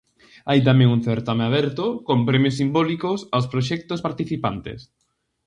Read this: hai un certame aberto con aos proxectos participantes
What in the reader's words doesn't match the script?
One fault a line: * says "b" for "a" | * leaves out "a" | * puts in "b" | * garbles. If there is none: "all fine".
* puts in "tamén"
* puts in "premios simbólicos"